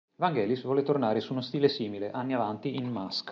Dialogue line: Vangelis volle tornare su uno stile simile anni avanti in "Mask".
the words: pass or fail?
pass